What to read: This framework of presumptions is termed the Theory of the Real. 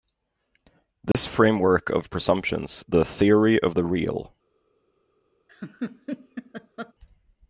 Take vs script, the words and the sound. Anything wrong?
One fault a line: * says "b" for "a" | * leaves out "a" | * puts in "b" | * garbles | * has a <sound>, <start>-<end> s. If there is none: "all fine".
* has a dropout, 1.1-1.1 s
* leaves out "is termed"
* has a laugh, 5.5-6.9 s